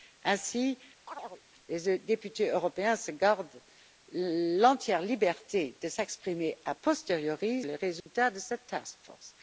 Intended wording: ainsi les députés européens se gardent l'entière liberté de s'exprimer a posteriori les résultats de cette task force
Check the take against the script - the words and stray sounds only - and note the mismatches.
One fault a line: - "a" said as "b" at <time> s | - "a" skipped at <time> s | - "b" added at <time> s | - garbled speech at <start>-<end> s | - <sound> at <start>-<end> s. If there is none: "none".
- chirp at 1.1-1.4 s
- dropout at 8.0-8.1 s